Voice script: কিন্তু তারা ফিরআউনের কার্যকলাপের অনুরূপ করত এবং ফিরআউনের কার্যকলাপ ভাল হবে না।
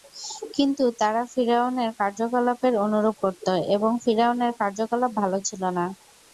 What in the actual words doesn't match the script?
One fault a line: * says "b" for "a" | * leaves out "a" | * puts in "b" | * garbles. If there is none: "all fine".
* says "ছিল" for "হবে"